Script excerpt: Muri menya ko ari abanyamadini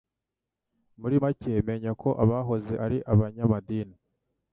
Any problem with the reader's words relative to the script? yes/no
yes